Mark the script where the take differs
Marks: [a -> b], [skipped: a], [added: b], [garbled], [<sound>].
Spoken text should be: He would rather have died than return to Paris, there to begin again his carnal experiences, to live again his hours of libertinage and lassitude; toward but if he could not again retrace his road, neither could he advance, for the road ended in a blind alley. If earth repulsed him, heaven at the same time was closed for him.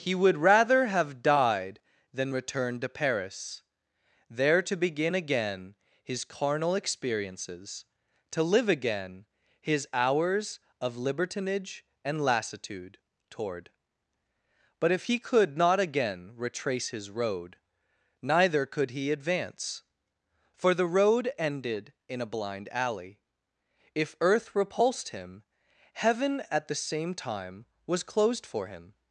He would rather have died than return to Paris, there to begin again his carnal experiences, to live again his hours of libertinage and lassitude; toward but if he could not again retrace his road, neither could he advance, for the road ended in a blind alley. If earth repulsed him, heaven at the same time was closed for him.